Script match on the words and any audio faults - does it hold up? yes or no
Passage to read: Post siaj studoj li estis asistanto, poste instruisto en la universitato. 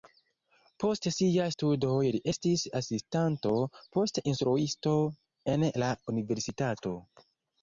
yes